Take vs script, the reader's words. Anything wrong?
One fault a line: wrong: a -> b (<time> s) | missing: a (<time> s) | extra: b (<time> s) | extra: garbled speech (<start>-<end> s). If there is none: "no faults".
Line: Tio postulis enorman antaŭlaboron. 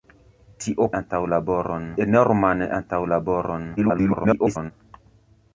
wrong: postulis -> antaŭlaboron (1.0 s)
extra: garbled speech (3.8-4.7 s)